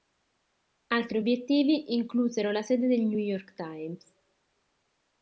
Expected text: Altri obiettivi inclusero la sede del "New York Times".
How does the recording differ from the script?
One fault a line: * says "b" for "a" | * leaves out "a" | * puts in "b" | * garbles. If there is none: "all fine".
all fine